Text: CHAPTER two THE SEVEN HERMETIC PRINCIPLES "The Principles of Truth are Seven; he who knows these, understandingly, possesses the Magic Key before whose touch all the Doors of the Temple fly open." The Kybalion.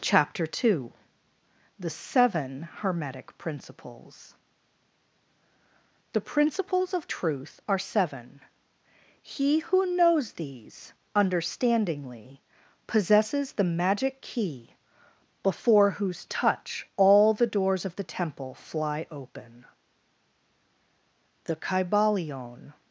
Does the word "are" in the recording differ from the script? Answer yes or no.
no